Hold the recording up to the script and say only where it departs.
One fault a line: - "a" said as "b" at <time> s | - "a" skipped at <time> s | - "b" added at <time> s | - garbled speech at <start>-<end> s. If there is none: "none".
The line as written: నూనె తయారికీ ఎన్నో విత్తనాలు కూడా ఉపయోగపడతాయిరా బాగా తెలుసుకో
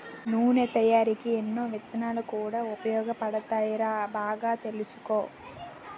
none